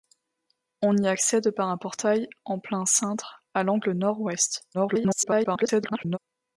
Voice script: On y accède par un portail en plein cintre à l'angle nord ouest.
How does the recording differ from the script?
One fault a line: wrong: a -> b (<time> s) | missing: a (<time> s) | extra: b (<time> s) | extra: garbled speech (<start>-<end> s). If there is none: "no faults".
extra: garbled speech (4.7-6.2 s)